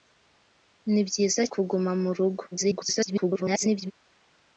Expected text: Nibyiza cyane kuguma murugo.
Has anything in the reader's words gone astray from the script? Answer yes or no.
yes